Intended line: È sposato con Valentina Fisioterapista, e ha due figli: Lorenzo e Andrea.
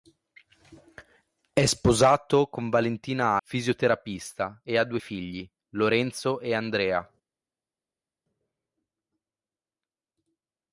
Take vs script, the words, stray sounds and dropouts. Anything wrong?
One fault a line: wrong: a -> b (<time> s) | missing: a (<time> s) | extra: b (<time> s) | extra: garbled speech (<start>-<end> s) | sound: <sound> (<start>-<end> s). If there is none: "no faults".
no faults